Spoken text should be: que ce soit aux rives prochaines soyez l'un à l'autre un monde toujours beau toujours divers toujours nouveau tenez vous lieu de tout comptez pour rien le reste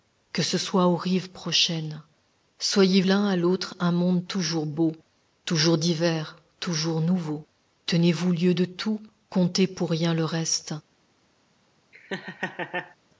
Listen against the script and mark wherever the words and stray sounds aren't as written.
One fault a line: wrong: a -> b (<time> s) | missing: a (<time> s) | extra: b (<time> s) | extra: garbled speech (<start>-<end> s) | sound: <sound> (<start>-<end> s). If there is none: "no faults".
sound: laugh (11.9-13.0 s)